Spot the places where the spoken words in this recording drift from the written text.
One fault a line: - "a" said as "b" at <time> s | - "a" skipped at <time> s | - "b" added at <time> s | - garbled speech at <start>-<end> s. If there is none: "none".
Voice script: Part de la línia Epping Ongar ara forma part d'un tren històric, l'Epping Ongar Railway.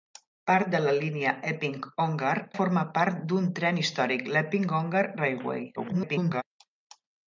- "ara" skipped at 2.3 s
- garbled speech at 5.8-6.4 s